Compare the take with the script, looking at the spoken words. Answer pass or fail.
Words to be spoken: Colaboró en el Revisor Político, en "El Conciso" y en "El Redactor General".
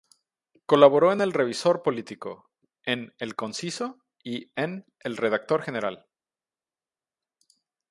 pass